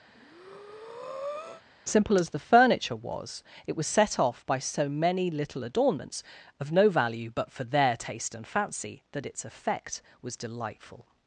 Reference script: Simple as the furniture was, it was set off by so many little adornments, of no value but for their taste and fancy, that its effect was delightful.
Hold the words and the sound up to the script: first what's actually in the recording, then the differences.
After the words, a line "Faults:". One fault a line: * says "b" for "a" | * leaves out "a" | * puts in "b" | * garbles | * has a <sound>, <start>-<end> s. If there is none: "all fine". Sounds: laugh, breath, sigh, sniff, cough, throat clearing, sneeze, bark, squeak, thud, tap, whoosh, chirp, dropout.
Simple as the furniture was, it was set off by so many little adornments, of no value but for their taste and fancy, that its effect was delightful.
Faults:
* has a breath, 0.1-1.6 s